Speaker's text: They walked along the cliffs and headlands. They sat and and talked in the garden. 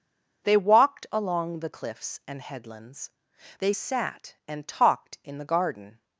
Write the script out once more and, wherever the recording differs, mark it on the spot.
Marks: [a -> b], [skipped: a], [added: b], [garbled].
They walked along the cliffs and headlands. They sat and [skipped: and] talked in the garden.